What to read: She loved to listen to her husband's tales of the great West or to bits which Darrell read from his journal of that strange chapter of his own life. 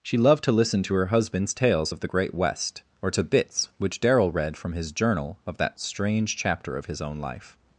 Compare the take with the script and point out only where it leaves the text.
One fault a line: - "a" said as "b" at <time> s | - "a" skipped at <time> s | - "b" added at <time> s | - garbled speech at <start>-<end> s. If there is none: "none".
none